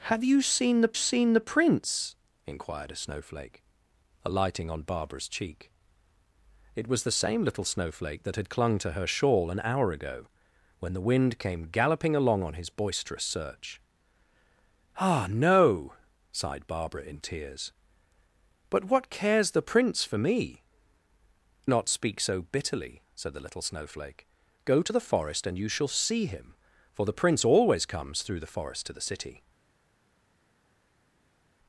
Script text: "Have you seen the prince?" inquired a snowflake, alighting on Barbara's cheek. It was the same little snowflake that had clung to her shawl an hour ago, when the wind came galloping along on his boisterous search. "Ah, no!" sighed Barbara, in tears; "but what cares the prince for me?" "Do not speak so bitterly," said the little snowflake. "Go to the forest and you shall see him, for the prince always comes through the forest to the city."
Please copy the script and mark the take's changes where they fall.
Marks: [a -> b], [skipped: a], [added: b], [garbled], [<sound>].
"Have you seen the [added: seen the] prince?" inquired a snowflake, alighting on Barbara's cheek. It was the same little snowflake that had clung to her shawl an hour ago, when the wind came galloping along on his boisterous search. "Ah, no!" sighed Barbara, in tears; "but what cares the prince for me?" [skipped: "Do] not speak so bitterly," said the little snowflake. "Go to the forest and you shall see him, for the prince always comes through the forest to the city."